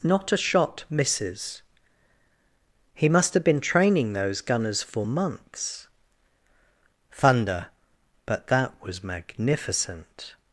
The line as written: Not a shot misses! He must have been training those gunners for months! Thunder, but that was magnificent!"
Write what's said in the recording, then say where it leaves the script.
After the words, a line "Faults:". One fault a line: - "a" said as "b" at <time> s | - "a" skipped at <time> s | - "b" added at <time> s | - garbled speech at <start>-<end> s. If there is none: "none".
Not a shot misses! He must have been training those gunners for months! Thunder, but that was magnificent!"
Faults:
none